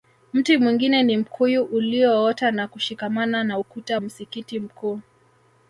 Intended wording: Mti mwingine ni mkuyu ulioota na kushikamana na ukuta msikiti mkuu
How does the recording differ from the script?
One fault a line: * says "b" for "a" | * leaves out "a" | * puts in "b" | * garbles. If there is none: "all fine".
all fine